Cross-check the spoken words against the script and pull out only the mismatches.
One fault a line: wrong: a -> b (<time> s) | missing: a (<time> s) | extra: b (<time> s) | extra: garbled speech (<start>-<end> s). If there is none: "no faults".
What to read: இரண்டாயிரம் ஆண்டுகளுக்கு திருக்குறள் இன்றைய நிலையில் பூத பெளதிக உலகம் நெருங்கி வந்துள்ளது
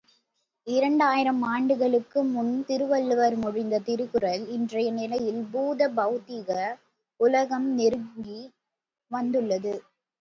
extra: முன் திருவள்ளுவர் மொழிந்த (2.3 s)